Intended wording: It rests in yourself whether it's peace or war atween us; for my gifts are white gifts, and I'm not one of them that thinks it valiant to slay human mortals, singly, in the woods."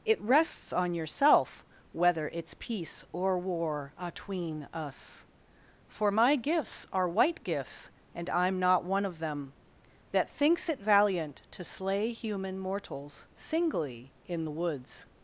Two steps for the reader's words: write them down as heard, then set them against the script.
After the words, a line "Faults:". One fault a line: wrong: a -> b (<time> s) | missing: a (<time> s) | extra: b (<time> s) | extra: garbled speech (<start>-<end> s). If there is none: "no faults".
It rests on yourself whether it's peace or war atween us; for my gifts are white gifts, and I'm not one of them that thinks it valiant to slay human mortals, singly, in the woods."
Faults:
wrong: in -> on (0.7 s)